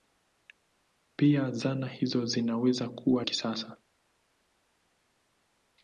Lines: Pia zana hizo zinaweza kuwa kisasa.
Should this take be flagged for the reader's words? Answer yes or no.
no